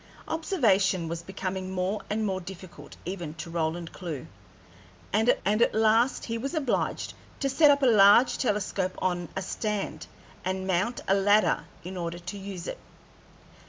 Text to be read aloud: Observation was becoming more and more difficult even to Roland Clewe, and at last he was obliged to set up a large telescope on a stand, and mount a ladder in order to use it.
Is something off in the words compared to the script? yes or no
yes